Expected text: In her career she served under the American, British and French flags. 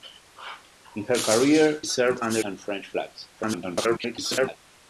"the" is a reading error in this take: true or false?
true